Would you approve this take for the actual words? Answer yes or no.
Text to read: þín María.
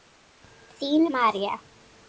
yes